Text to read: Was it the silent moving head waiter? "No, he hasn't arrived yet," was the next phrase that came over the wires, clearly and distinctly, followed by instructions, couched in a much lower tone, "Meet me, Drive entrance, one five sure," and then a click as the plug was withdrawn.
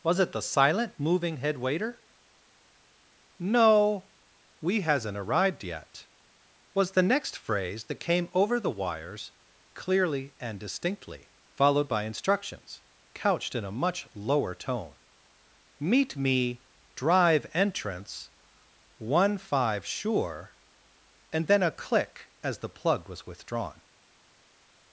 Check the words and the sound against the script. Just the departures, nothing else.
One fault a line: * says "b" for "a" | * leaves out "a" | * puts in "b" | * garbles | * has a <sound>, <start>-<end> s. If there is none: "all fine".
* says "we" for "he"